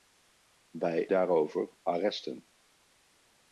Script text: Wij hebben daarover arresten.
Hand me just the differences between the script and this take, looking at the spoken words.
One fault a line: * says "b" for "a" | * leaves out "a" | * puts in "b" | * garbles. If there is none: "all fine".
* leaves out "hebben"